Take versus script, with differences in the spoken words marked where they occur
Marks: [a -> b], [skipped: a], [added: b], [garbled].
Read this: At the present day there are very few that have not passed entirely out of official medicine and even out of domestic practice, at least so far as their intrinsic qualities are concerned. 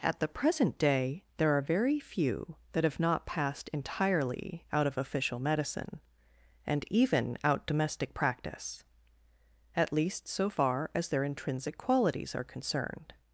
At the present day there are very few that have not passed entirely out of official medicine and even out [skipped: of] domestic practice, at least so far as their intrinsic qualities are concerned.